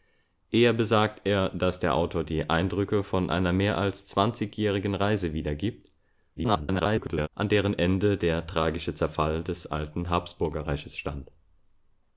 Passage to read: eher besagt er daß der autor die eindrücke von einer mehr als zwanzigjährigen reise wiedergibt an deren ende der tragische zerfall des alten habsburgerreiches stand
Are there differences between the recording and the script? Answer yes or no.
yes